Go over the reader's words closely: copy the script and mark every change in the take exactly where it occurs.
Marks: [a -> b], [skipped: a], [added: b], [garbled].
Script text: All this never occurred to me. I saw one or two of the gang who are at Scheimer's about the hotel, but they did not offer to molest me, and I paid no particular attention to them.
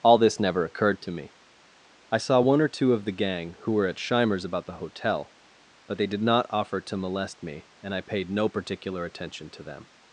All this never occurred to me. I saw one or two of the gang who [are -> were] at Scheimer's about the hotel, but they did not offer to molest me, and I paid no particular attention to them.